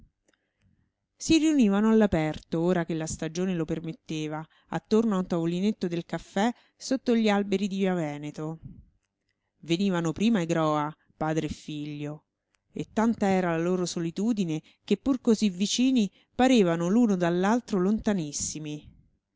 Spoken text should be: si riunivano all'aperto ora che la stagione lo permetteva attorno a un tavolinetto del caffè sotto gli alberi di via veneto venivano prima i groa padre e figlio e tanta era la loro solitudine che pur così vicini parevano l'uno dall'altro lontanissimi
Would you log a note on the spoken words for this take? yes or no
no